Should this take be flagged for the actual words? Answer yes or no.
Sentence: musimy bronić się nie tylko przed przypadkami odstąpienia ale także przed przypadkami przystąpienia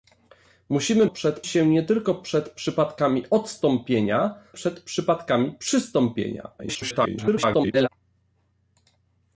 yes